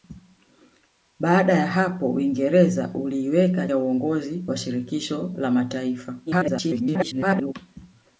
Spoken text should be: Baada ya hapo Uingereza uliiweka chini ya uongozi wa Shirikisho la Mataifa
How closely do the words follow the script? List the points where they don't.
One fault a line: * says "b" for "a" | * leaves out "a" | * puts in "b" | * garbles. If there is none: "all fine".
* leaves out "chini"
* garbles